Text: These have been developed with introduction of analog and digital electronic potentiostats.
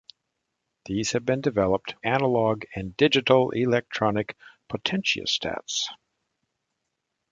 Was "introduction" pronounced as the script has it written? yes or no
no